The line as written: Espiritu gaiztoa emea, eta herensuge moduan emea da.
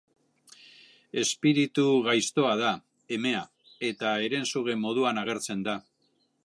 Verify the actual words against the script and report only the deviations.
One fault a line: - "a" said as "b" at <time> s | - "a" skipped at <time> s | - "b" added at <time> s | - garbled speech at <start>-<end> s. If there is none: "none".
- "da" added at 2.6 s
- "emea" said as "agertzen" at 5.2 s